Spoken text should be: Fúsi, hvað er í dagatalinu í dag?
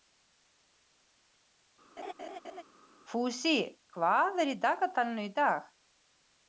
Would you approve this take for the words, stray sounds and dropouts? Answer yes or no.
no